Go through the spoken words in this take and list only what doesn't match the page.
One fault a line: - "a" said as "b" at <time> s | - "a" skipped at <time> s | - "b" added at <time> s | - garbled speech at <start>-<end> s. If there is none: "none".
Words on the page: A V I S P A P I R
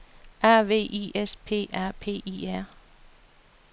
none